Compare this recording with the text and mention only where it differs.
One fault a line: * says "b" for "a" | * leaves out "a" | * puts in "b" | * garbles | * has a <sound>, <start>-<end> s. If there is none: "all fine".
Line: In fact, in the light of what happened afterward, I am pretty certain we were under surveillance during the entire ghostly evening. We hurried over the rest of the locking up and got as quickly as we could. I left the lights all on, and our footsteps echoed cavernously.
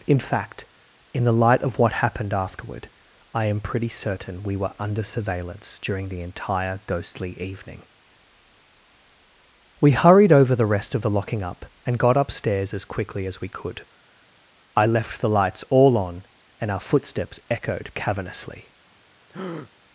* puts in "upstairs"
* has a breath, 19.3-19.7 s